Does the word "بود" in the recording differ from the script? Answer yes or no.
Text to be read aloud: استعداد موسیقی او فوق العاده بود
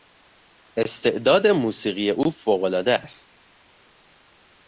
yes